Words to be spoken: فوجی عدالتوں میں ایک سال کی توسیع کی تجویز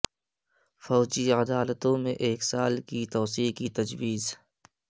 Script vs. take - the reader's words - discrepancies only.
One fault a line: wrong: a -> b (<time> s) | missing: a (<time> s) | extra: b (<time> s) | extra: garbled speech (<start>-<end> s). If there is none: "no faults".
no faults